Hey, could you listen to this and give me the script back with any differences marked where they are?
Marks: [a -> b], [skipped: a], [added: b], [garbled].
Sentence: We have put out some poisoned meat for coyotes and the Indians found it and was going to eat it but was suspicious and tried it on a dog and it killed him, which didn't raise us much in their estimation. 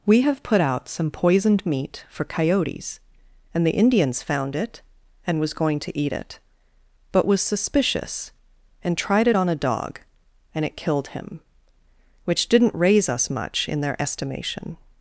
We have put out some poisoned meat for coyotes and the Indians found it and was going to eat it but was suspicious and tried it on a dog and it killed him, which didn't raise us much in their estimation.